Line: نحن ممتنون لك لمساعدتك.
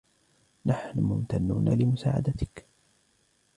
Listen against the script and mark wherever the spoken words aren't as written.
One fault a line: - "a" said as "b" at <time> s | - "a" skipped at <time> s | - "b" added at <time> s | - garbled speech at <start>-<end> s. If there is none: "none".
- "لك" skipped at 1.7 s